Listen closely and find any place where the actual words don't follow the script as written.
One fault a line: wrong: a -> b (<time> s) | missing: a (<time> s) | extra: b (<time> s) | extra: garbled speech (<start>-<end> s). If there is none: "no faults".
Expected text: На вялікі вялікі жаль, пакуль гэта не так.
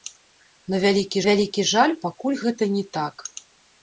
no faults